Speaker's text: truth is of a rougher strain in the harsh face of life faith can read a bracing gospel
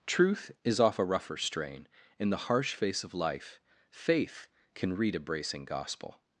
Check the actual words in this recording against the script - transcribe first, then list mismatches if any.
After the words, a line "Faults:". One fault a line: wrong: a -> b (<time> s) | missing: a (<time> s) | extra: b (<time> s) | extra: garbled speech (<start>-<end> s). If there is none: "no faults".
truth is off a rougher strain in the harsh face of life faith can read a bracing gospel
Faults:
wrong: of -> off (0.8 s)